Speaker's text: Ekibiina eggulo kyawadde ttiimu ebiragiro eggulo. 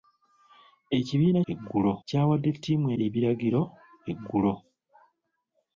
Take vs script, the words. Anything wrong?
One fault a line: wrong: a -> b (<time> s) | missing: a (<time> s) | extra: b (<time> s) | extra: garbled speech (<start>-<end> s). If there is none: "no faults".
no faults